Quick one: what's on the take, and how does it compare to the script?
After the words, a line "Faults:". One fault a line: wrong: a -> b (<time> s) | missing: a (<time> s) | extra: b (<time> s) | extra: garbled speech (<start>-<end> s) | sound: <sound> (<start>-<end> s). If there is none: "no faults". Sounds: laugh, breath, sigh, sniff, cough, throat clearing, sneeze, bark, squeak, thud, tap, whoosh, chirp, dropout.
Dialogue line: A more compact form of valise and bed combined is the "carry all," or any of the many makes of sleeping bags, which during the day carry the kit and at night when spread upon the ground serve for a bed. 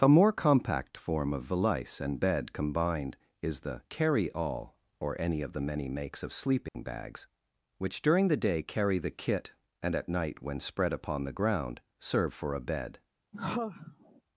A more compact form of valise and bed combined is the "carry all," or any of the many makes of sleeping bags, which during the day carry the kit and at night when spread upon the ground serve for a bed.
Faults:
sound: dropout (6.7-6.7 s)
sound: sigh (13.3-14.2 s)